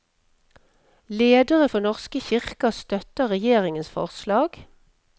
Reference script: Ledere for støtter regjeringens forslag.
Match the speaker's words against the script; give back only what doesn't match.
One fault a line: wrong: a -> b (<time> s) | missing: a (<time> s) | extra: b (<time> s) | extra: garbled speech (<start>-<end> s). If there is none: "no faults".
extra: norske kirker (1.9 s)